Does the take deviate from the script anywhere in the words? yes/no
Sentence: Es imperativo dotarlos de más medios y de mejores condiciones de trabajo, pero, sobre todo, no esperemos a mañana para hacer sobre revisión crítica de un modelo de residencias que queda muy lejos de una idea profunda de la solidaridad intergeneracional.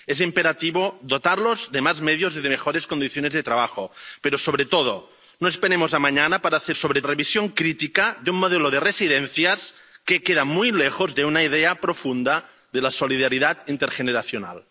no